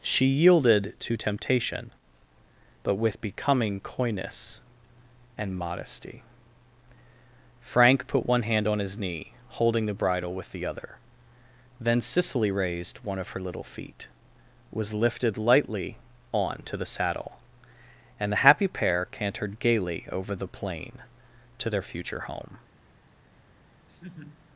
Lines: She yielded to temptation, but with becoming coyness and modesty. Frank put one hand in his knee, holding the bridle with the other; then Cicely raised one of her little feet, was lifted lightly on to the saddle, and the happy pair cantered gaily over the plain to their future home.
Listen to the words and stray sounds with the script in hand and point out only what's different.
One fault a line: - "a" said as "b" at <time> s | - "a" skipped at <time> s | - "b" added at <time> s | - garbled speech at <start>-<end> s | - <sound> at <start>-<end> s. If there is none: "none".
- "in" said as "on" at 8.7 s
- laugh at 23.9-24.4 s